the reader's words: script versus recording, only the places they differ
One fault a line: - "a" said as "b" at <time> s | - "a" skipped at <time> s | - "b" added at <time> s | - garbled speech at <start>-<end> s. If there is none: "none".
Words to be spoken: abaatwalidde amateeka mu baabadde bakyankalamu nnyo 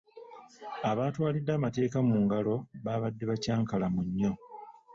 - "ngalo" added at 2.2 s